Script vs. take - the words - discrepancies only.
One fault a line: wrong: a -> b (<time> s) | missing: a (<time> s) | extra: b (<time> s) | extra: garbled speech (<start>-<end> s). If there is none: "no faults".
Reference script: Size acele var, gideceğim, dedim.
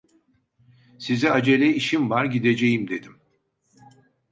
extra: işim (1.7 s)